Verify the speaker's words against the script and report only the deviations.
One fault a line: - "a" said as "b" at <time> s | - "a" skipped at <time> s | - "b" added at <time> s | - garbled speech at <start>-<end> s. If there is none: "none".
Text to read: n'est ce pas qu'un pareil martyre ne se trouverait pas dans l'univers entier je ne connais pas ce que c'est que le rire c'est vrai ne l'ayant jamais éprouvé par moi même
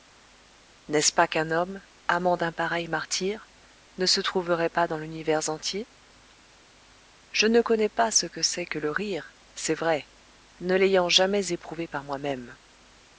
- "homme amant d'un" added at 1.5 s